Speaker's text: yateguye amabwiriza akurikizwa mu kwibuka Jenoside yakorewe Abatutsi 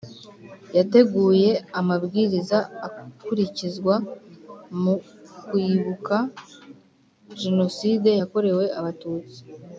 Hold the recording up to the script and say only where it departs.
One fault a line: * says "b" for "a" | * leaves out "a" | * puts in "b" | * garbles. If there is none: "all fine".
all fine